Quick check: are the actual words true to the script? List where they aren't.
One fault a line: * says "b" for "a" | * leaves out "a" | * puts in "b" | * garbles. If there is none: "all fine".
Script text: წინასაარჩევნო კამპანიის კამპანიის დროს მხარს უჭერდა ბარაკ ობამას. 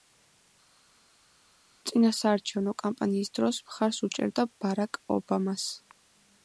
* leaves out "კამპანიის"